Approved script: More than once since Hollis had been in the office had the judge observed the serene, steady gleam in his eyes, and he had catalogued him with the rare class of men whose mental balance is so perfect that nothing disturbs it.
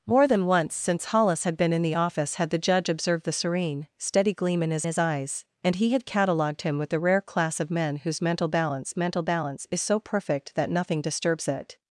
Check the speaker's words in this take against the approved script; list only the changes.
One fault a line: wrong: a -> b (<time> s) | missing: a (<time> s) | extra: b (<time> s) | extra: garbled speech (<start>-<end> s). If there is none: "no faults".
extra: his (4.8 s)
extra: mental balance (9.0 s)